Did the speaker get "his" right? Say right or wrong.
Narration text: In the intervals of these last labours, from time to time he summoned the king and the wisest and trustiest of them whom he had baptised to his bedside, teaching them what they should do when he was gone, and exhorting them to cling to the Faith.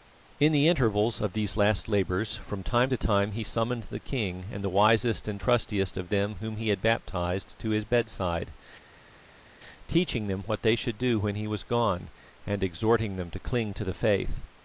right